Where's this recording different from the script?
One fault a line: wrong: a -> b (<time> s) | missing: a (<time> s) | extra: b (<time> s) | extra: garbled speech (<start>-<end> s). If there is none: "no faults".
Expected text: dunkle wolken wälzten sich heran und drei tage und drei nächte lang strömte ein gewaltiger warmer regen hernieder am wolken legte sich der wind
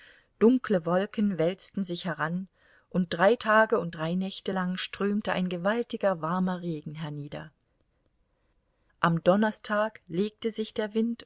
wrong: wolken -> donnerstag (9.2 s)